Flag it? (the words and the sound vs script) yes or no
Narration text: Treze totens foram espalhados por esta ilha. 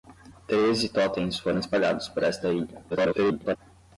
yes